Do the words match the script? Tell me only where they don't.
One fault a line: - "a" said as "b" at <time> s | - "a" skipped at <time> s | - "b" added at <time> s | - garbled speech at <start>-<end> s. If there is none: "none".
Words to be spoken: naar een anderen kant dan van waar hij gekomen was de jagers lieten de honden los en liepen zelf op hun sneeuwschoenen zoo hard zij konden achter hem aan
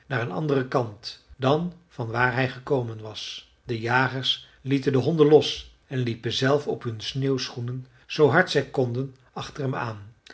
none